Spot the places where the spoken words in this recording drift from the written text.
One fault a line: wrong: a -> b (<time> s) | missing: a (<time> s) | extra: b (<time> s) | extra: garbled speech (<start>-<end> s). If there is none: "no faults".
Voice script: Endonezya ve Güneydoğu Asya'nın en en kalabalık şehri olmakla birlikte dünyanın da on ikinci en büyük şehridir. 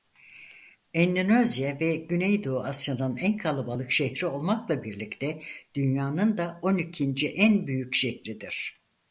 missing: en (3.4 s)